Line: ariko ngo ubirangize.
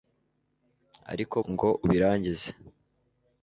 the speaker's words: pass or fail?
pass